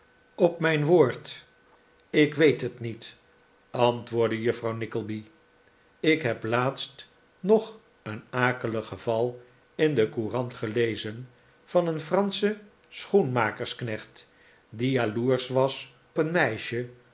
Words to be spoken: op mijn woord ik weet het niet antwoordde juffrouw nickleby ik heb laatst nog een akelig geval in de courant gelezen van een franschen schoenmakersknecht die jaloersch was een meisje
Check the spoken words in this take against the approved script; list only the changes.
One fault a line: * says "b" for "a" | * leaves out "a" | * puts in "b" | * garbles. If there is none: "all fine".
all fine